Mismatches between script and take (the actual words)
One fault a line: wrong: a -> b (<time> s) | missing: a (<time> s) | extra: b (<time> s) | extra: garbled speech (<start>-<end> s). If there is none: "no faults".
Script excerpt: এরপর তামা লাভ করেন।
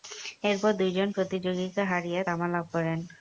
extra: দুইজন প্রতিযোগীকে হারিয়ে (0.7 s)